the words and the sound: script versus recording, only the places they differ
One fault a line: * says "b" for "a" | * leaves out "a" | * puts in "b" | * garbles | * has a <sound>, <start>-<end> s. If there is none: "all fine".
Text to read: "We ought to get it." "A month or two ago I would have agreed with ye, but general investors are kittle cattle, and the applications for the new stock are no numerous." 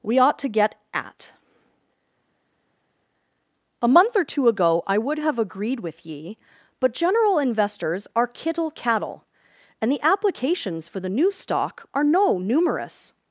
* says "at" for "it"